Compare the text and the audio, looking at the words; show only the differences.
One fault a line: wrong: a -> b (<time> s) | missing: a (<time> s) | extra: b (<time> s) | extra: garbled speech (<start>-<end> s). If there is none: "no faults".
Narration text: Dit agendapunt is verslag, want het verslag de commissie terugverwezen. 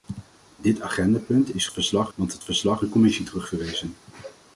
no faults